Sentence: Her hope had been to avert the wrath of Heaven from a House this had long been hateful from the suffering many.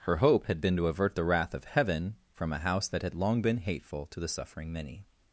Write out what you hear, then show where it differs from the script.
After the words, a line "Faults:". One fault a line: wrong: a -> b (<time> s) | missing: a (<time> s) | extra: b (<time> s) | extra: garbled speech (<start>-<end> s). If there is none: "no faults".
Her hope had been to avert the wrath of Heaven from a House that had long been hateful to the suffering many.
Faults:
wrong: this -> that (2.9 s)
wrong: from -> to (4.1 s)